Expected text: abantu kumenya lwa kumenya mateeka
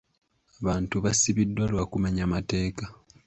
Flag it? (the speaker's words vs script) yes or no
yes